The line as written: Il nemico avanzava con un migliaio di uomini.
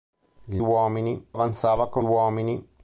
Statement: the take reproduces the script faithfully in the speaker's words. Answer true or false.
false